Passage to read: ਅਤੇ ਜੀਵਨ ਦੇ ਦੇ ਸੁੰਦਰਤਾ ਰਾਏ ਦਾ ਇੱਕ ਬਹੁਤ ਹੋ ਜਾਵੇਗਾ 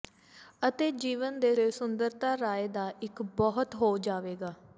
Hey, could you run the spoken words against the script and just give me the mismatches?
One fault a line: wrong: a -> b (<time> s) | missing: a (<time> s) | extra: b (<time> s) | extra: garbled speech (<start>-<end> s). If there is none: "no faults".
no faults